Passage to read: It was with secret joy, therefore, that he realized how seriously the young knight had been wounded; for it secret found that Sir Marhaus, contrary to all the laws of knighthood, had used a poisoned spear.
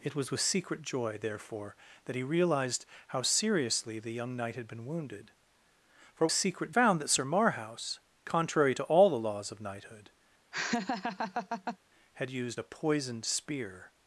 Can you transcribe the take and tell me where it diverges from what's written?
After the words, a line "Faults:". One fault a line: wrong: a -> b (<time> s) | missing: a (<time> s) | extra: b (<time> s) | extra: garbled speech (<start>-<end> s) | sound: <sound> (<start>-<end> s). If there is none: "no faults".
It was with secret joy, therefore, that he realized how seriously the young knight had been wounded; for it secret found that Sir Marhaus, contrary to all the laws of knighthood, had used a poisoned spear.
Faults:
sound: laugh (10.5-11.8 s)